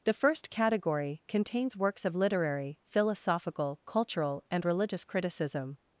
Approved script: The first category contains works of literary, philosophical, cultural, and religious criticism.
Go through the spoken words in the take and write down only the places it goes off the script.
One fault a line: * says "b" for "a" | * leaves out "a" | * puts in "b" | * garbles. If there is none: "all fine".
all fine